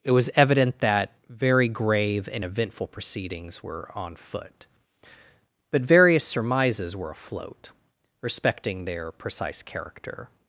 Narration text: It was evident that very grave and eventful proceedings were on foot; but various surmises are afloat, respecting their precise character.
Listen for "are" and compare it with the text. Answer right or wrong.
wrong